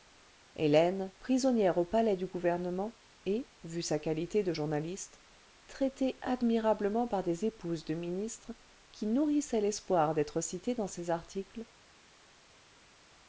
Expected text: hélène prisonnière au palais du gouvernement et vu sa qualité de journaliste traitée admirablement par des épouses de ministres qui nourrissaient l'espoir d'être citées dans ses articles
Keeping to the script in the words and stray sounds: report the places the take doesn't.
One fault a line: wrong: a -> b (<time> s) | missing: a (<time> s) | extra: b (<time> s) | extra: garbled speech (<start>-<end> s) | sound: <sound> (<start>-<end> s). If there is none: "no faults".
no faults